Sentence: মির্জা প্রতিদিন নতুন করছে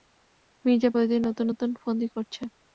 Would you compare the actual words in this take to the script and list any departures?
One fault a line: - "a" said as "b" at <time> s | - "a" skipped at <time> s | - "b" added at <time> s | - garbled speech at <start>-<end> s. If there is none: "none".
- "নতুন ফন্দি" added at 1.5 s